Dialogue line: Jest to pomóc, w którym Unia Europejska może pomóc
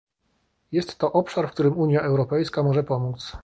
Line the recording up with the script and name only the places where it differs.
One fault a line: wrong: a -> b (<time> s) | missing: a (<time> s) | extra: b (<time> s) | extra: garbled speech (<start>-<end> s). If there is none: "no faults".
wrong: pomóc -> obszar (1.1 s)